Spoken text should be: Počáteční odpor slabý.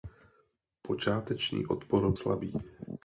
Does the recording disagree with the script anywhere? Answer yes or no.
no